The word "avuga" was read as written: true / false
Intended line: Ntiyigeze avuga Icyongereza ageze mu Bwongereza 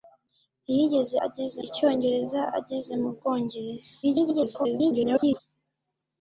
false